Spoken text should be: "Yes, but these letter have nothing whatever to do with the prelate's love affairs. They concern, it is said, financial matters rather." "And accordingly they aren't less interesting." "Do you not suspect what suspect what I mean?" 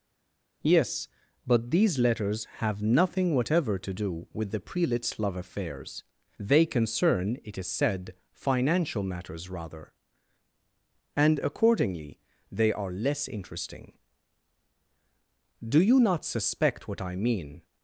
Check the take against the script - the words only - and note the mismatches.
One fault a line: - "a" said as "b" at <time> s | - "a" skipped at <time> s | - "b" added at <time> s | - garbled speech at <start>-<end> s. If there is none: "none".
- "letter" said as "letters" at 2.0 s
- "aren't" said as "are" at 12.7 s
- "suspect what" skipped at 17.0 s